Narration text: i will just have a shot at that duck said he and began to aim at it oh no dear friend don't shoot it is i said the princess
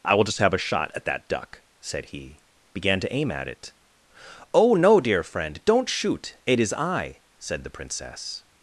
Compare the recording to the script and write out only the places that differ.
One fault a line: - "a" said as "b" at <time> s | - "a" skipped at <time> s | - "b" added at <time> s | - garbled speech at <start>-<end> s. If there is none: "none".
- "and" skipped at 2.4 s